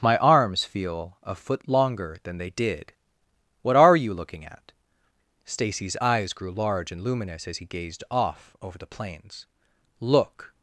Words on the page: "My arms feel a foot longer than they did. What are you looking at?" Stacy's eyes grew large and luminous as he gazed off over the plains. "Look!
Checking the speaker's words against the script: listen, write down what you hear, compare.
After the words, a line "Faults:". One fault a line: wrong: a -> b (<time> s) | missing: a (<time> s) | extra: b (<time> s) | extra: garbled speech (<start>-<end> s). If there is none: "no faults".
"My arms feel a foot longer than they did. What are you looking at?" Stacy's eyes grew large and luminous as he gazed off over the plains. "Look!
Faults:
no faults